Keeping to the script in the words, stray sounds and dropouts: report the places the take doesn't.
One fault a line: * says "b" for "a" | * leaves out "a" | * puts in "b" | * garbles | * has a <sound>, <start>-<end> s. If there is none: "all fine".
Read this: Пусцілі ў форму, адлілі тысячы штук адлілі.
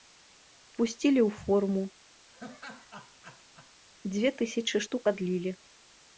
* has a laugh, 2.3-3.7 s
* says "дзве" for "адлілі"